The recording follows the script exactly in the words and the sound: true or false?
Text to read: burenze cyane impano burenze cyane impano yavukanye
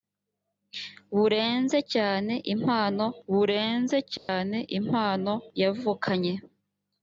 false